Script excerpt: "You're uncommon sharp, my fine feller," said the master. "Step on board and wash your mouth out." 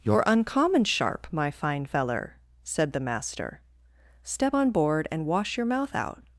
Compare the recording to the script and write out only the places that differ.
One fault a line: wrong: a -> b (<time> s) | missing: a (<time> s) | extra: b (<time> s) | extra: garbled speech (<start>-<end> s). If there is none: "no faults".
no faults